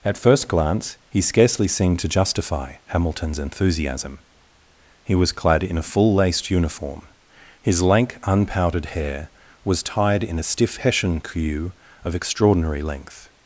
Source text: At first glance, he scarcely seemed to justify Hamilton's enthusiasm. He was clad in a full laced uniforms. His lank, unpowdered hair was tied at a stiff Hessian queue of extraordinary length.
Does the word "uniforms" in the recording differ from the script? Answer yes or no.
yes